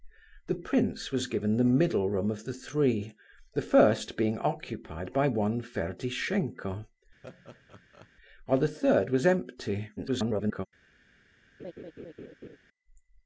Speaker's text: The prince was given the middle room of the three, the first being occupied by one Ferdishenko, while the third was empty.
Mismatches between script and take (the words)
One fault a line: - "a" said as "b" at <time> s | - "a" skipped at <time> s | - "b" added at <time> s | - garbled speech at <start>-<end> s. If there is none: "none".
- garbled speech at 10.0-10.7 s